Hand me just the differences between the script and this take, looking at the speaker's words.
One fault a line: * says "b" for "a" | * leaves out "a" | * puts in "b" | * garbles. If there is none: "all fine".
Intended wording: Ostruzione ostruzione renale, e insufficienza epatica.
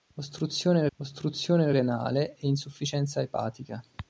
all fine